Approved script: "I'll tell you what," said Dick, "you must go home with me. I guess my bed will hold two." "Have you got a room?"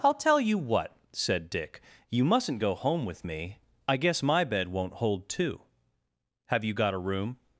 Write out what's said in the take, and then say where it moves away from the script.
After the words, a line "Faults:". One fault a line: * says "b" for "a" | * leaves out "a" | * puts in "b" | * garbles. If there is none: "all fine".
"I'll tell you what," said Dick, "you mustn't go home with me. I guess my bed won't hold two." "Have you got a room?"
Faults:
* says "mustn't" for "must"
* says "won't" for "will"